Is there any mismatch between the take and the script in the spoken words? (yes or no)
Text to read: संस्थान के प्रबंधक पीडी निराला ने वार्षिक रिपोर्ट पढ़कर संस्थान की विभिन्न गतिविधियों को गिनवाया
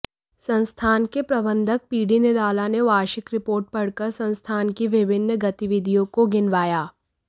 no